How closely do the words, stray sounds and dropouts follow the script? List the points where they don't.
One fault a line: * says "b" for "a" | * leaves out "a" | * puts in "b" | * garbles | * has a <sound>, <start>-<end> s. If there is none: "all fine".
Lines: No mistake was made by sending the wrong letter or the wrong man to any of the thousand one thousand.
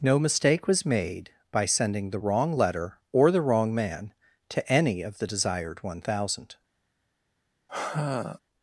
* says "desired" for "thousand"
* has a sigh, 7.7-8.4 s